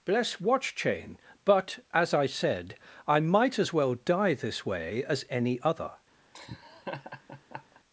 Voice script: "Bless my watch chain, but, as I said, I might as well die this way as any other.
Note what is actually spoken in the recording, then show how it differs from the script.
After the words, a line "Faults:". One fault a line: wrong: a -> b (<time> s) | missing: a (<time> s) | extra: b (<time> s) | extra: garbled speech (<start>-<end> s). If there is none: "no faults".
"Bless watch chain, but, as I said, I might as well die this way as any other.
Faults:
missing: my (0.4 s)